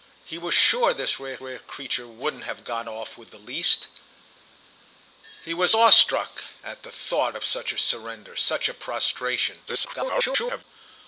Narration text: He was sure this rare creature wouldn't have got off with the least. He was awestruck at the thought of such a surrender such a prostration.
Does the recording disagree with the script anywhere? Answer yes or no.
yes